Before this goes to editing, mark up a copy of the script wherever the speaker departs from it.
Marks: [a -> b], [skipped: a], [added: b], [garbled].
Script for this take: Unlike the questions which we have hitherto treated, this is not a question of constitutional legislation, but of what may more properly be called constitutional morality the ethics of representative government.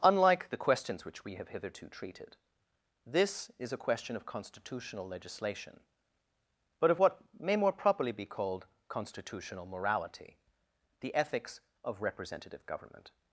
Unlike the questions which we have hitherto treated, this is [skipped: not] a question of constitutional legislation, but of what may more properly be called constitutional morality the ethics of representative government.